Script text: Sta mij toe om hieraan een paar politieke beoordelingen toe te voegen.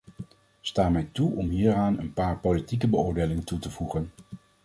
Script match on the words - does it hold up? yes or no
yes